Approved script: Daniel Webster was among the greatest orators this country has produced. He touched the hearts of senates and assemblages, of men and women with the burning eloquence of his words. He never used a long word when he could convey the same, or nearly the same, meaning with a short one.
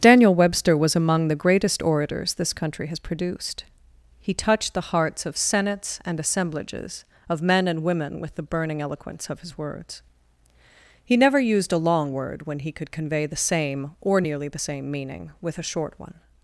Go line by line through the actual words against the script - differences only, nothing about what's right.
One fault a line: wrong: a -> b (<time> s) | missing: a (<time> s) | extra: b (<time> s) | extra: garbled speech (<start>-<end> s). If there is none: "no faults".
no faults